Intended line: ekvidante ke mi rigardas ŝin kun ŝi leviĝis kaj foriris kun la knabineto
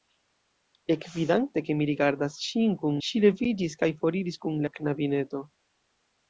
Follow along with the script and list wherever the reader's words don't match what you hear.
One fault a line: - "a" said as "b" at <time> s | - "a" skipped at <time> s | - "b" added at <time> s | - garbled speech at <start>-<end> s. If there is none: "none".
none